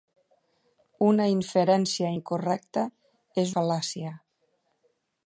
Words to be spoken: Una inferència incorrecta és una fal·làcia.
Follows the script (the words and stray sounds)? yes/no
no